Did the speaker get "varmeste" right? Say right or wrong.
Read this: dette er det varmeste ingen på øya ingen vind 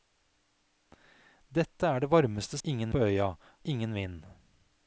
right